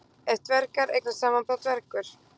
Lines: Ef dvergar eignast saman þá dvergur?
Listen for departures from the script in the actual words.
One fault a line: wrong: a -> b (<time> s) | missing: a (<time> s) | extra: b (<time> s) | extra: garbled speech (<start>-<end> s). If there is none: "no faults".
no faults